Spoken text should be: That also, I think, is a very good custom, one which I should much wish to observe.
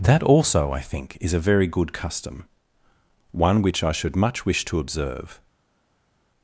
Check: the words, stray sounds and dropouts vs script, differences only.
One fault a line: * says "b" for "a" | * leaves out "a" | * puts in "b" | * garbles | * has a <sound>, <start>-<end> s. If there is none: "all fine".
all fine